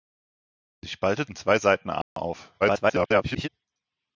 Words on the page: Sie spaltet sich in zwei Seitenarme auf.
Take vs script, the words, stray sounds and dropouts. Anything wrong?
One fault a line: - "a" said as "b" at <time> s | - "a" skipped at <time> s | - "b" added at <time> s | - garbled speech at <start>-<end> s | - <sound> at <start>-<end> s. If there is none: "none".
- "sich" skipped at 1.3 s
- dropout at 2.0-2.2 s
- garbled speech at 2.6-3.5 s